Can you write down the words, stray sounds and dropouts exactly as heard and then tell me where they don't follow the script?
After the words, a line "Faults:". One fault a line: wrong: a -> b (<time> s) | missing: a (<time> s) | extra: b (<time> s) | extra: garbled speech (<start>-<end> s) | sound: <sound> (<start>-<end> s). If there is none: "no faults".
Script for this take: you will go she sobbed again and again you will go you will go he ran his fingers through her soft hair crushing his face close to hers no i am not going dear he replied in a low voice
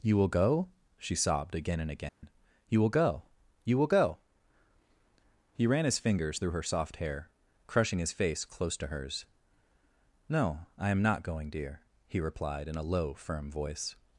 you will go she sobbed again and again you will go you will go he ran his fingers through her soft hair crushing his face close to hers no i am not going dear he replied in a low firm voice
Faults:
sound: dropout (2.1-2.2 s)
extra: firm (13.1 s)